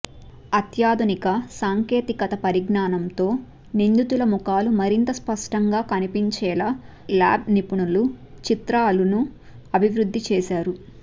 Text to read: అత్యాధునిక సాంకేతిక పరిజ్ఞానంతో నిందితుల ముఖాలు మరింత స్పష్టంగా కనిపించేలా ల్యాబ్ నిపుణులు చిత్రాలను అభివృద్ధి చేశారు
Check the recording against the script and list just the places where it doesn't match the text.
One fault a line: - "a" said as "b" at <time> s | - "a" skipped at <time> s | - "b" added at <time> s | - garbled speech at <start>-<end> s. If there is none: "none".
none